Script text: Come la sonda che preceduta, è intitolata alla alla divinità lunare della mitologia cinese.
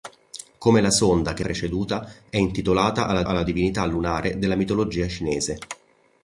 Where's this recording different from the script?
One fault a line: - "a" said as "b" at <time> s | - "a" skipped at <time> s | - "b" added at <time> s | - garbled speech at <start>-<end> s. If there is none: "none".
none